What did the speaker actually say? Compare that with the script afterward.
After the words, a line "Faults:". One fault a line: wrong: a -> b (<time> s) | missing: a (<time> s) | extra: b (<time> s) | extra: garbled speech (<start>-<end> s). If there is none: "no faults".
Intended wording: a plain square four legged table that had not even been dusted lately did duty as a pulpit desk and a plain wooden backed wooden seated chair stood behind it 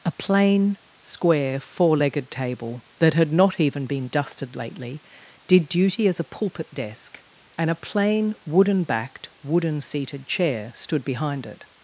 a plain square four legged table that had not even been dusted lately did duty as a pulpit desk and a plain wooden backed wooden seated chair stood behind it
Faults:
no faults